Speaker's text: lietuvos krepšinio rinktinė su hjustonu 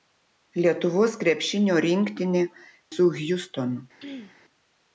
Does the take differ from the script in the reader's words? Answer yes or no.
no